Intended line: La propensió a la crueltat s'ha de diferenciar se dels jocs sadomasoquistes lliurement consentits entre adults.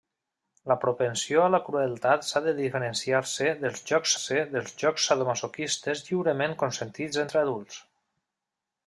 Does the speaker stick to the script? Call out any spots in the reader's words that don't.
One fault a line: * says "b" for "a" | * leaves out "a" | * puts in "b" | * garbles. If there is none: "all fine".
* puts in "se dels jocs"